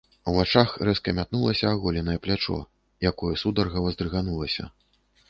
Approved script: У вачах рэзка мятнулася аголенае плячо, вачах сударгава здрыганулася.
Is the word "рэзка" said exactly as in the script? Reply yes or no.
yes